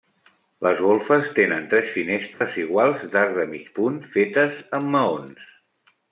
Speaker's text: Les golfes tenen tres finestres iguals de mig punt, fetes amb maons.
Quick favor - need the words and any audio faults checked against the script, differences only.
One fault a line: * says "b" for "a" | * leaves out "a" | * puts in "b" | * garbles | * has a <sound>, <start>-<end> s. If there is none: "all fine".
* has a dropout, 2.3-2.4 s
* puts in "d'arc"